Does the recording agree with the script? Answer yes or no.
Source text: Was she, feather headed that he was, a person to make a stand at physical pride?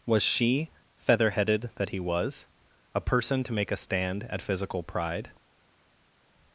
yes